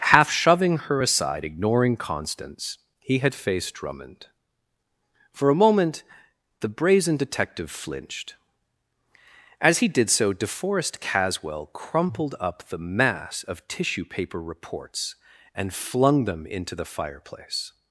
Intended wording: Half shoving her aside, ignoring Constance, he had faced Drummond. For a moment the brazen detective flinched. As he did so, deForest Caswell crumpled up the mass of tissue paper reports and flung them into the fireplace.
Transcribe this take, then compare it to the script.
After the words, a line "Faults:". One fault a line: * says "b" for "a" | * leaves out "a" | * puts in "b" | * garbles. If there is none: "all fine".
Half shoving her aside, ignoring Constance, he had faced Drummond. For a moment the brazen detective flinched. As he did so, deForest Caswell crumpled up the mass of tissue paper reports and flung them into the fireplace.
Faults:
all fine